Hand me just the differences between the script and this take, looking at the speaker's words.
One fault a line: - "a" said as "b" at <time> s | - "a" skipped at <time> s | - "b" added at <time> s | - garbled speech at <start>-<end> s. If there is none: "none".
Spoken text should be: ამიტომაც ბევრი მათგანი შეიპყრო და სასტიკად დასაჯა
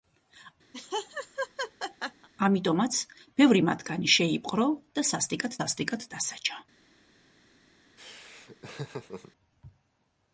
- "სასტიკად" added at 5.6 s